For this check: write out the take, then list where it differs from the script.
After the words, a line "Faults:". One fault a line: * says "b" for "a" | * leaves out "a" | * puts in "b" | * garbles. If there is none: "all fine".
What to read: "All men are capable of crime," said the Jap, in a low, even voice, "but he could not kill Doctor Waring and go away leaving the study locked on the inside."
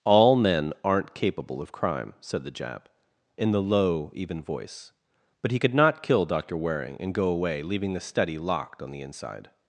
"All men aren't capable of crime," said the Jap, in the low, even voice, "but he could not kill Doctor Waring and go away leaving the study locked on the inside."
Faults:
* says "aren't" for "are"
* says "the" for "a"